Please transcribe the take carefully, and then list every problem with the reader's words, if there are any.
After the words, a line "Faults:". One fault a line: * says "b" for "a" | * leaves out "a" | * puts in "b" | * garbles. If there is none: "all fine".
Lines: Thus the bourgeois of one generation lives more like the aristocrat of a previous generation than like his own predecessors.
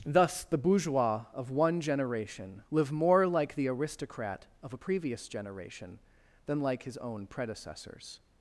Thus the bourgeois of one generation live more like the aristocrat of a previous generation than like his own predecessors.
Faults:
* says "live" for "lives"